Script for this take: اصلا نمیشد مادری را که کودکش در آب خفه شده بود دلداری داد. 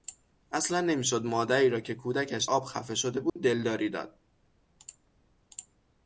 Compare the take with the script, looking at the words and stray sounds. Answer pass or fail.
fail